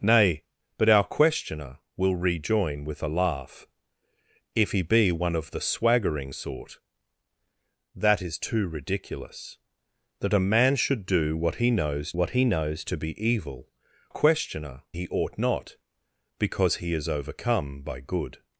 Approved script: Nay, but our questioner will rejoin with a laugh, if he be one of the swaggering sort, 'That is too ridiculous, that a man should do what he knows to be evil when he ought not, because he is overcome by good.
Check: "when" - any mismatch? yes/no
yes